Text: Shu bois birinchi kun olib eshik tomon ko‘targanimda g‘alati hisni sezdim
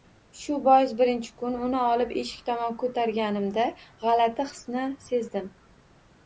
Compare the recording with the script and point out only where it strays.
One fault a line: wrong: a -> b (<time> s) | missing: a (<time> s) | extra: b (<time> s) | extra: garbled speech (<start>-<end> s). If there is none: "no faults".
extra: uni (1.7 s)